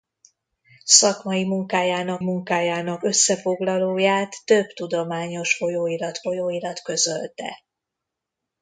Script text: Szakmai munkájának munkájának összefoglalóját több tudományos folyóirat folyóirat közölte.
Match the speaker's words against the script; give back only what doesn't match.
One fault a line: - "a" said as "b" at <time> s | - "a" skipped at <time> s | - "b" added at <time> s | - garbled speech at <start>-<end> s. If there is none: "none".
none